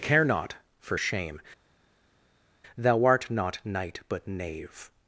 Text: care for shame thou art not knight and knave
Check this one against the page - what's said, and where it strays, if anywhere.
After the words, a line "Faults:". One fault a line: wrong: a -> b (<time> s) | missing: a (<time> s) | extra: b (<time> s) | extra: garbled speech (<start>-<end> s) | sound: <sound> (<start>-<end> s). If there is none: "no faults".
care not for shame thou art not knight but knave
Faults:
extra: not (0.2 s)
wrong: and -> but (4.1 s)